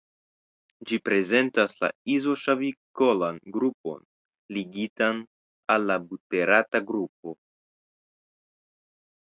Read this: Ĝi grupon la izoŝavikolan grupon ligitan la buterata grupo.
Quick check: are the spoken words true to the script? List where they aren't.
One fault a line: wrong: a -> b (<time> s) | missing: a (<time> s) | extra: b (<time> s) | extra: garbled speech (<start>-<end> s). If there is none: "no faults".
wrong: grupon -> prezentas (1.1 s)
extra: al (5.8 s)